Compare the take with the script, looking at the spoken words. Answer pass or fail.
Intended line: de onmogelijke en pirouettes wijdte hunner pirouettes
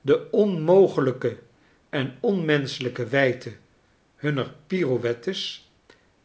fail